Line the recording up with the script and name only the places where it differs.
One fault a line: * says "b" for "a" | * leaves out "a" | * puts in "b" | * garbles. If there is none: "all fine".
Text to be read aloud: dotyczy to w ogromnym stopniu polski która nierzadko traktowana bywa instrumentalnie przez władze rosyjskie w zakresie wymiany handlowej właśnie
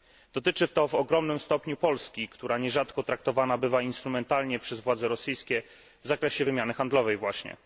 all fine